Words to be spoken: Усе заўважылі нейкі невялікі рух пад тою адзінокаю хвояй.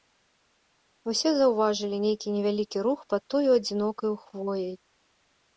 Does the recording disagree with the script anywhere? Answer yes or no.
no